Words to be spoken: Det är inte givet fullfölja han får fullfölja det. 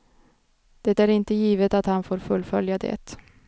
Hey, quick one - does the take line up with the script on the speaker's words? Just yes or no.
no